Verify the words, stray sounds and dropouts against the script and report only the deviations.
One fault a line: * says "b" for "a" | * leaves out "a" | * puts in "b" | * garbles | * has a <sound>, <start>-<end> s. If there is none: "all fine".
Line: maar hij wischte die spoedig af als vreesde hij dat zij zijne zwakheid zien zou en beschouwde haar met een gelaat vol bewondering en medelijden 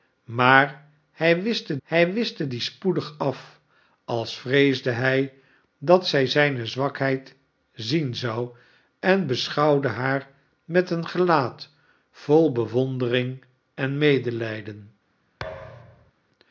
* puts in "hij wischte"
* has a thud, 15.4-16.1 s